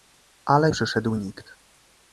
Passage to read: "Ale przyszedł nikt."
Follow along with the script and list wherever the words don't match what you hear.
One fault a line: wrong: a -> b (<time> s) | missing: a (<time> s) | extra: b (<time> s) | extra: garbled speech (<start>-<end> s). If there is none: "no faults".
no faults